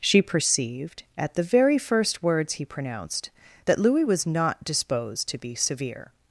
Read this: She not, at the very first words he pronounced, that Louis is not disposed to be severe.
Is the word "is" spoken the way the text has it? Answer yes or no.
no